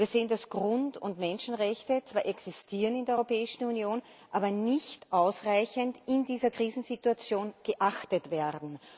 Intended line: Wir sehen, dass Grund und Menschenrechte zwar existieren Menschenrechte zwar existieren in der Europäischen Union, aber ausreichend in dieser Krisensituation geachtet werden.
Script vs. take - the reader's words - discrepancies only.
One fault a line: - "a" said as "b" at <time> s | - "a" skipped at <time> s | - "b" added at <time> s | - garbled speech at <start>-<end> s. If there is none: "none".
- "Menschenrechte zwar existieren" skipped at 3.0 s
- "nicht" added at 4.5 s